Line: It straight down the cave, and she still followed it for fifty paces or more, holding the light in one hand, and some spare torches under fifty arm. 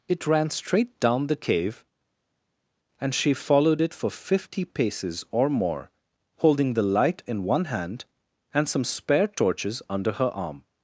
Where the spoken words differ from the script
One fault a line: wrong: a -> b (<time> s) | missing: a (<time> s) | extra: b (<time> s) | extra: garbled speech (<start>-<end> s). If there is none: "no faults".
extra: ran (0.3 s)
missing: still (3.3 s)
wrong: fifty -> her (10.1 s)